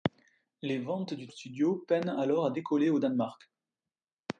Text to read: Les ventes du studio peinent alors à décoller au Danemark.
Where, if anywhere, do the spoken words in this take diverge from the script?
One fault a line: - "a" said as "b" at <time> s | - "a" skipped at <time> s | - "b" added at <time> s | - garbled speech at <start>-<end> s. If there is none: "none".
none